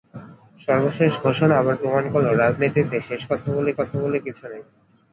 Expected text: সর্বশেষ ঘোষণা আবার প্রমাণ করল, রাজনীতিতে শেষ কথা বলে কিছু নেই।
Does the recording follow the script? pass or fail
fail